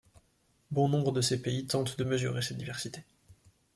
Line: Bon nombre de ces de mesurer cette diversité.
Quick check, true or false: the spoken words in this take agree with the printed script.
false